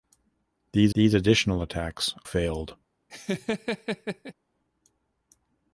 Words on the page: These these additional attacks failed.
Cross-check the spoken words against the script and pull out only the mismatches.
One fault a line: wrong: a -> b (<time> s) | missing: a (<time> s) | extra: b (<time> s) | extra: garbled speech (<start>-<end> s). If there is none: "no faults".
no faults